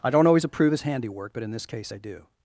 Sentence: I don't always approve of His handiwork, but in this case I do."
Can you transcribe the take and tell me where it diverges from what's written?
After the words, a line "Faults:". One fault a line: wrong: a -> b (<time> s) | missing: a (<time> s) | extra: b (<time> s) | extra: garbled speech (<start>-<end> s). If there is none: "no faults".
I don't always approve His handiwork, but in this case I do."
Faults:
missing: of (0.7 s)